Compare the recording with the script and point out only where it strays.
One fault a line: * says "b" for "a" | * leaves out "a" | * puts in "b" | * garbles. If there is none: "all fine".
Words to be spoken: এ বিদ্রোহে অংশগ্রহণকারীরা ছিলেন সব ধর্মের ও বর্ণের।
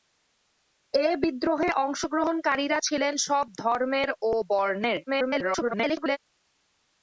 * garbles